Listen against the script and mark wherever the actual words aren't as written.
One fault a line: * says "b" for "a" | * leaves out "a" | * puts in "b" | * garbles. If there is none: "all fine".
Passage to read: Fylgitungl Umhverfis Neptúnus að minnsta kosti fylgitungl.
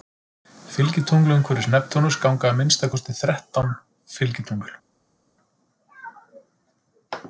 * puts in "ganga"
* puts in "þrettán"